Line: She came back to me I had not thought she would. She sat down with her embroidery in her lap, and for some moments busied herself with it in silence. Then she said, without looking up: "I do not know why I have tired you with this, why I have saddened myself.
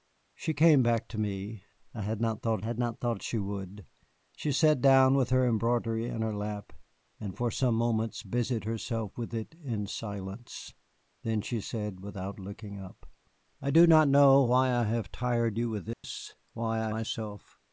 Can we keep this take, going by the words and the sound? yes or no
no